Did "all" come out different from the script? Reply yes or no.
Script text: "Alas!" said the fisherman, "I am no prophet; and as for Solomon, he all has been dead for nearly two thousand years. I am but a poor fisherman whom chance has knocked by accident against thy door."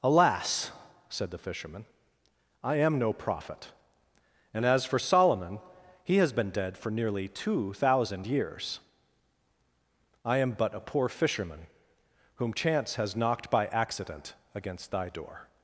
yes